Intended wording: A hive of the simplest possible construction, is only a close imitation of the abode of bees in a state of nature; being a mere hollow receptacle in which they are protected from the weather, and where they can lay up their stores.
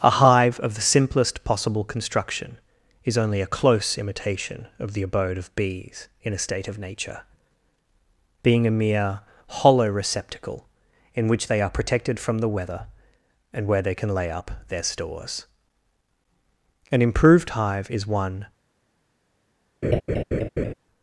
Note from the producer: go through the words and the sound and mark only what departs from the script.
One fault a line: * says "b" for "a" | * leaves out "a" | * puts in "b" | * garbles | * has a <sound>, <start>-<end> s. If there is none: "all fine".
* puts in "An improved hive is one"
* has a laugh, 19.8-20.7 s